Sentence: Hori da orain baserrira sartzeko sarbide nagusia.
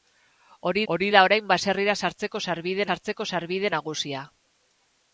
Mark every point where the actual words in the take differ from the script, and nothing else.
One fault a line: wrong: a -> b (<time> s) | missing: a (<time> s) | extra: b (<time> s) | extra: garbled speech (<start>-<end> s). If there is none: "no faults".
extra: hori (0.9 s)
extra: sartzeko sarbide (2.9 s)